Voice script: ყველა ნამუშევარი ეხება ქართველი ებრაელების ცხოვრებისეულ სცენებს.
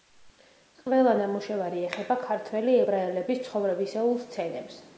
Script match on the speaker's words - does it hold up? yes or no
yes